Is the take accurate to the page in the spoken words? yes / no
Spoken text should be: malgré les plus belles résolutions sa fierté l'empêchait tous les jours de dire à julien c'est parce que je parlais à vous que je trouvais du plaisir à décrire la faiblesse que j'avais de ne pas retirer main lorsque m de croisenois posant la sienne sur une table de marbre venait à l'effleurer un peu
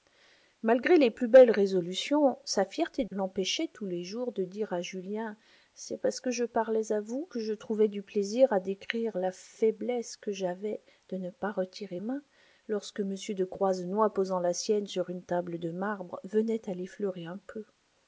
yes